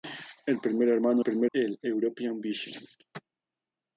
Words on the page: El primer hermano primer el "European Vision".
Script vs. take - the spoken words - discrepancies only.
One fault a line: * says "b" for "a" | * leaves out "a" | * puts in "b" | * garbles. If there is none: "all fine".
all fine